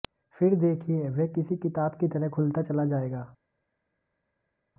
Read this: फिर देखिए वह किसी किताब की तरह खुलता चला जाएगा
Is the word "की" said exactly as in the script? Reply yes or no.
yes